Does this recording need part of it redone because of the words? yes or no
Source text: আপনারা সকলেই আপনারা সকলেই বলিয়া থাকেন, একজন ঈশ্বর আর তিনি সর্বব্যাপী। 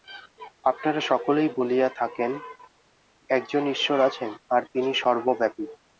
yes